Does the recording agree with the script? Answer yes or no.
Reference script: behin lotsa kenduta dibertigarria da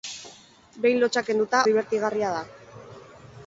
yes